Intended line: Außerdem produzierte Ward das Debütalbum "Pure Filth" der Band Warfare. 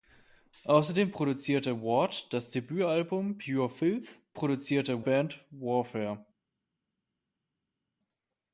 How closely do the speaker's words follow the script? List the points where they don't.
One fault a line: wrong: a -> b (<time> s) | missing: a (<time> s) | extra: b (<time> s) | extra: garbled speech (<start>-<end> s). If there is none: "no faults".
wrong: der -> produzierte (4.3 s)